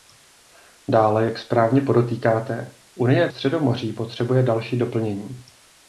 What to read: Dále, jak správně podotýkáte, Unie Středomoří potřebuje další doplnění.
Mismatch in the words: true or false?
false